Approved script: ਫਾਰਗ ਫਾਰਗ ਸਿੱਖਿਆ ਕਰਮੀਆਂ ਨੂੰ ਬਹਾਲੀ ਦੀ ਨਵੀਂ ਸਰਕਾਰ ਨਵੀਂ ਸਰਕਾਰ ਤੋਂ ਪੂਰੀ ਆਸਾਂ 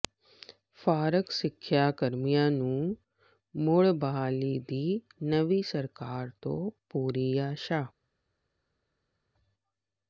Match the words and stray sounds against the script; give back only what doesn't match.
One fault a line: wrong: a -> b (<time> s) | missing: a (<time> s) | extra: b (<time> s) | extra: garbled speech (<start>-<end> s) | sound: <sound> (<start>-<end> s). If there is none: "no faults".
missing: ਫਾਰਗ (1.3 s)
extra: ਮੁੜ (3.5 s)
missing: ਨਵੀਂ ਸਰਕਾਰ (6.3 s)